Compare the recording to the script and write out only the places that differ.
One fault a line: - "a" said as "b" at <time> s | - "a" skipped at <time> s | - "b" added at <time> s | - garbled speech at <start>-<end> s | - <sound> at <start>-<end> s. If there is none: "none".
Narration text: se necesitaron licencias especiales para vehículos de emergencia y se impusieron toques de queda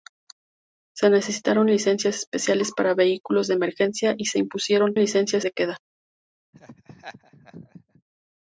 - "toques" said as "licencias" at 5.0 s
- laugh at 6.5-8.0 s